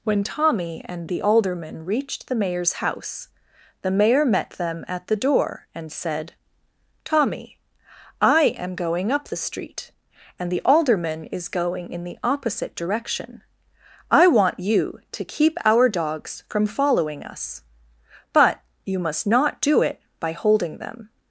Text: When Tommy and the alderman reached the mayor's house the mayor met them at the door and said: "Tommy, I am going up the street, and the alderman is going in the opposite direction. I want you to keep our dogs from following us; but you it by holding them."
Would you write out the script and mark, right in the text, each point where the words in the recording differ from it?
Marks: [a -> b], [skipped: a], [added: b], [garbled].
When Tommy and the alderman reached the mayor's house the mayor met them at the door and said: "Tommy, I am going up the street, and the alderman is going in the opposite direction. I want you to keep our dogs from following us; but you [added: must not do] it by holding them."